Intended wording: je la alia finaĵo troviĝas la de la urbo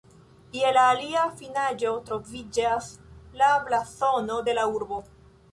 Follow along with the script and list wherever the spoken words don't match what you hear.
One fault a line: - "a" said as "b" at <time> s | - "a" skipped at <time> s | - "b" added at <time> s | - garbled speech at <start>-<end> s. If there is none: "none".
- "blazono" added at 3.7 s